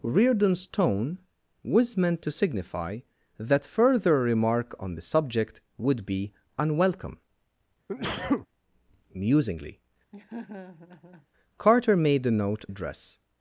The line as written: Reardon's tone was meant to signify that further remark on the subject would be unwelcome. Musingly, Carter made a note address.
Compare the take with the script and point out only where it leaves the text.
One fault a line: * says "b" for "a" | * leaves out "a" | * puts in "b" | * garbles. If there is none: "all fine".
all fine